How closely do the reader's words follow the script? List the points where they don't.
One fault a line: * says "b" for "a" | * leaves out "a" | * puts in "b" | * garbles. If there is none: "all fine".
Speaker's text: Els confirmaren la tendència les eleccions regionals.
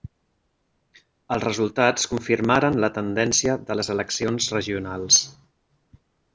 * puts in "resultats"
* puts in "de"